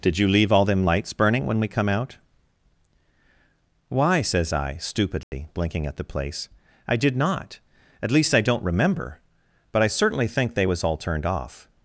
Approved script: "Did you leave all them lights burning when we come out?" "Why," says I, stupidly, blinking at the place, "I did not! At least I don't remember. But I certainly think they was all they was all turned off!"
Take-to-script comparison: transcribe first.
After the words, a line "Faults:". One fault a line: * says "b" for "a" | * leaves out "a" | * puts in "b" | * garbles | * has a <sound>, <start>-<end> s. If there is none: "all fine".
"Did you leave all them lights burning when we come out?" "Why," says I, stupidly, blinking at the place, "I did not! At least I don't remember. But I certainly think they was all turned off!"
Faults:
* has a dropout, 5.2-5.3 s
* leaves out "they was all"